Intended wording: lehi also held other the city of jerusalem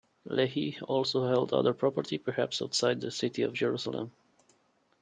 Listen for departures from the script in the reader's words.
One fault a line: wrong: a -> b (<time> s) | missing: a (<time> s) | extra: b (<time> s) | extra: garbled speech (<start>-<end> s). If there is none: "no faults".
extra: property perhaps outside (1.8 s)